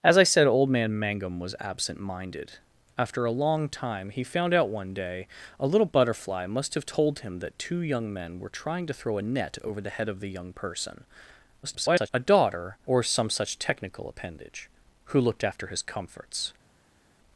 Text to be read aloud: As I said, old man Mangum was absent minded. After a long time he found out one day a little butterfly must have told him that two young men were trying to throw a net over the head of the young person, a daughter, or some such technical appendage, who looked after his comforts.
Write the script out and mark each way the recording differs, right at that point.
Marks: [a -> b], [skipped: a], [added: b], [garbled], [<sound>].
As I said, old man Mangum was absent minded. After a long time he found out one day a little butterfly must have told him that two young men were trying to throw a net over the head of the young person, [garbled] a daughter, or some such technical appendage, who looked after his comforts.